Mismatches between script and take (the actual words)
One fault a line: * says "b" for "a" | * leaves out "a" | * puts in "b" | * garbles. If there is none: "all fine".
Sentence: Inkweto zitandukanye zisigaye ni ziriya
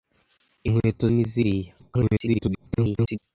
* leaves out "zitandukanye zisigaye"
* garbles